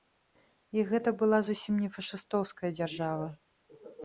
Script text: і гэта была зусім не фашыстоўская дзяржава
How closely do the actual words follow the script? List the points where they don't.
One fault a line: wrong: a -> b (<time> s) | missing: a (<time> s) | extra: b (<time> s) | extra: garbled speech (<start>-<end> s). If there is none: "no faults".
no faults